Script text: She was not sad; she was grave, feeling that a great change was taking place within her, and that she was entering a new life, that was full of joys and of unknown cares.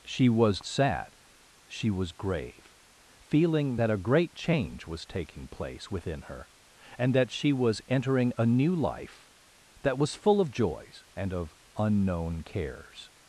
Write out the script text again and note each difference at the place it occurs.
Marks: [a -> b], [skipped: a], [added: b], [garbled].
She was [skipped: not] sad; she was grave, feeling that a great change was taking place within her, and that she was entering a new life, that was full of joys and of unknown cares.